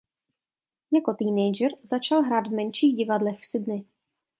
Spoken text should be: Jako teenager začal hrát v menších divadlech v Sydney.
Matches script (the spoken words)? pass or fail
pass